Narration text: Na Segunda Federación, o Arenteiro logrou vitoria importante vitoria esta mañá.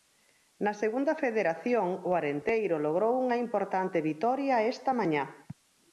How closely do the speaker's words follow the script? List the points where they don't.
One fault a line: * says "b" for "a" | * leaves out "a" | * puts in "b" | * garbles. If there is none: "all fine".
* says "unha" for "vitoria"